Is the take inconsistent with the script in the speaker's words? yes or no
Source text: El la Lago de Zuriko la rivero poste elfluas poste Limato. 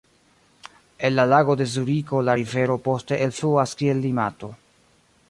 yes